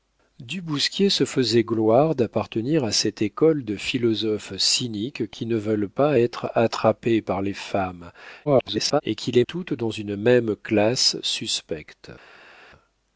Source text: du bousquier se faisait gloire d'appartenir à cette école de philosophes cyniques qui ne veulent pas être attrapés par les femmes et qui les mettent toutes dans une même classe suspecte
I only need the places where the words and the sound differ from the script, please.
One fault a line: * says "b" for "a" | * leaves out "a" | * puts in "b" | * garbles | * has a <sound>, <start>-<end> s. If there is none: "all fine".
* garbles
* leaves out "mettent"